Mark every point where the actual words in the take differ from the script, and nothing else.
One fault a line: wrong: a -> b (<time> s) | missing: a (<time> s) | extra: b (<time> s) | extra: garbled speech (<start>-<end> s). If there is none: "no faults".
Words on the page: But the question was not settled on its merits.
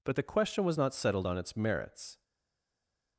no faults